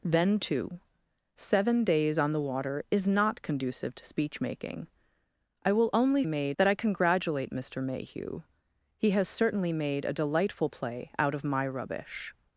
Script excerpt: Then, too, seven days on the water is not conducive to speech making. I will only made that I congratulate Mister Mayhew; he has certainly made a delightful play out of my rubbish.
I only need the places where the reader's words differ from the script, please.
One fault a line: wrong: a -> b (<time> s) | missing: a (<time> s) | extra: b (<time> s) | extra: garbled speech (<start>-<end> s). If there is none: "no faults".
no faults